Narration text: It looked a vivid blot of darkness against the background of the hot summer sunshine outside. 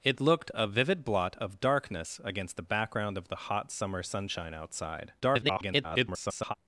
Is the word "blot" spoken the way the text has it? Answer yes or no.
yes